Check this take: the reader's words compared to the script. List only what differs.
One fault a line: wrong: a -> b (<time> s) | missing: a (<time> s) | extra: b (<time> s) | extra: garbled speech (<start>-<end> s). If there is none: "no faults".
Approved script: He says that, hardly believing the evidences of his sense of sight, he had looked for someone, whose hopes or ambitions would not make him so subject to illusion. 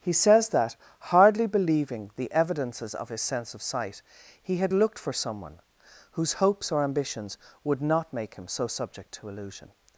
no faults